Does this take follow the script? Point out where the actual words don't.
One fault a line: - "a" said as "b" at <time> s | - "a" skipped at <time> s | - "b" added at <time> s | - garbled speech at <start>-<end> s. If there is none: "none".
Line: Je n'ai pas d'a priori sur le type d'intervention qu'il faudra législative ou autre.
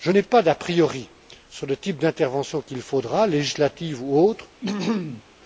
none